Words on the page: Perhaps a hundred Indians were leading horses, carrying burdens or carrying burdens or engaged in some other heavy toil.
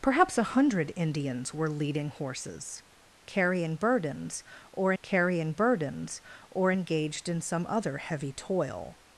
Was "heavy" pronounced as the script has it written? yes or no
yes